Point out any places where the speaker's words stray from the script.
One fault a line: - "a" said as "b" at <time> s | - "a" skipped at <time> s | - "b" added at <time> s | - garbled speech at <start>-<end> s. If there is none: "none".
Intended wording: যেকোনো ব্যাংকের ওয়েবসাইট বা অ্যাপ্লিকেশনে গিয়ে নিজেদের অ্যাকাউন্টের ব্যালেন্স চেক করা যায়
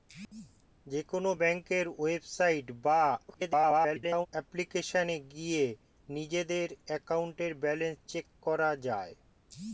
- garbled speech at 3.3-4.3 s